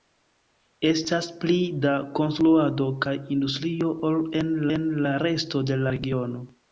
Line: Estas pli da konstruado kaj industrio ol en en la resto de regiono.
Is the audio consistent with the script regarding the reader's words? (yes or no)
yes